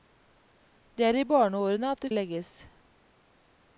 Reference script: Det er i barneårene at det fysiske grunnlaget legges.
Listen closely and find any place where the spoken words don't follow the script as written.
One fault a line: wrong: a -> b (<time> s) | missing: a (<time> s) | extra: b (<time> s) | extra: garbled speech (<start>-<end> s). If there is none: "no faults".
missing: fysiske grunnlaget (2.1 s)